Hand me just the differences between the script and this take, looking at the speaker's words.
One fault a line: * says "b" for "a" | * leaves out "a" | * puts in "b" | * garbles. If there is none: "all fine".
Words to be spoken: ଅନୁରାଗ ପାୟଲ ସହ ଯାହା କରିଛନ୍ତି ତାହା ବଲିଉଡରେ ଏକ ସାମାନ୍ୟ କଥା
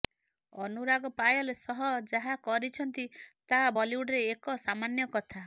all fine